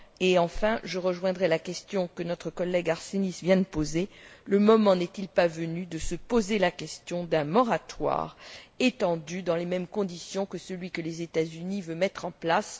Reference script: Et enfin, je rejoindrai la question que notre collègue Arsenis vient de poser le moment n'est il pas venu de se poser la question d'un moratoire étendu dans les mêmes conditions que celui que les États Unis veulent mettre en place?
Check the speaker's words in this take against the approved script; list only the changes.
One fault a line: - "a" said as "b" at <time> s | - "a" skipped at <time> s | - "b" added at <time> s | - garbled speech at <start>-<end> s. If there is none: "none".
none